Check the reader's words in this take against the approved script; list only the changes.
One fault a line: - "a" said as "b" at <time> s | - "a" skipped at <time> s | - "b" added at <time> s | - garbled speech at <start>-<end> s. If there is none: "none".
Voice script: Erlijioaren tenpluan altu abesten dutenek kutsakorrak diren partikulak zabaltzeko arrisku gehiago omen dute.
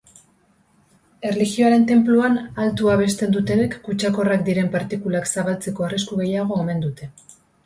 none